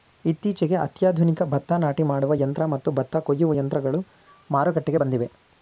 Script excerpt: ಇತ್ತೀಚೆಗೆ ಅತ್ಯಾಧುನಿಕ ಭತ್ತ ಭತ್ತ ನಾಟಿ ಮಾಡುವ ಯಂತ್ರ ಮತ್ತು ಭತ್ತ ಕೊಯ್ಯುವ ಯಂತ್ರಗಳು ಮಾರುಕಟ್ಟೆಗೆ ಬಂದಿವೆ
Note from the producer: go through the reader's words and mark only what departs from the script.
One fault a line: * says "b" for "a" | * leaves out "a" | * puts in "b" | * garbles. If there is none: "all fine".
* leaves out "ಭತ್ತ"